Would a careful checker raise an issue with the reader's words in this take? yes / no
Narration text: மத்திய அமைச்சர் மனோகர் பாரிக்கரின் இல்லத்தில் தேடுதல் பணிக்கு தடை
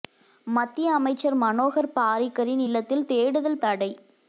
yes